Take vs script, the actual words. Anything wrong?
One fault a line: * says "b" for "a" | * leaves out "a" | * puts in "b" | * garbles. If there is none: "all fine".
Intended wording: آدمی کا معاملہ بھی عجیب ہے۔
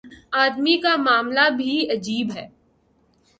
all fine